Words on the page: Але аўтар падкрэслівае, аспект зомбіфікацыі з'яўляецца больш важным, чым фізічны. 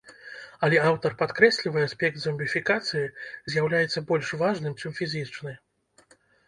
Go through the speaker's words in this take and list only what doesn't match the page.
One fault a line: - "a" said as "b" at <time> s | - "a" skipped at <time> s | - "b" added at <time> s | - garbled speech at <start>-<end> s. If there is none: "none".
none